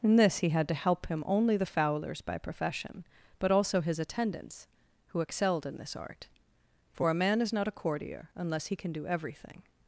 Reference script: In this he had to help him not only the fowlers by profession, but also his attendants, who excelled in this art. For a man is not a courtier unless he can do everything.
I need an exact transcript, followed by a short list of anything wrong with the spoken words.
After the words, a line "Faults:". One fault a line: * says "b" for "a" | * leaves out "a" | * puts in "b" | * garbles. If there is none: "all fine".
In this he had to help him only the fowlers by profession, but also his attendants, who excelled in this art. For a man is not a courtier unless he can do everything.
Faults:
* leaves out "not"